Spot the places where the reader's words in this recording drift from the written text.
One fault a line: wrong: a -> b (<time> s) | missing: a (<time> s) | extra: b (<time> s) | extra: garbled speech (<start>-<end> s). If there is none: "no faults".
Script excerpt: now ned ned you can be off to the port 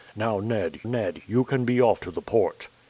no faults